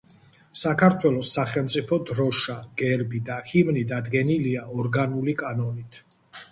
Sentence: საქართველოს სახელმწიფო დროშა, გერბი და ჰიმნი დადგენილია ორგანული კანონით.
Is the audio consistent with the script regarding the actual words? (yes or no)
yes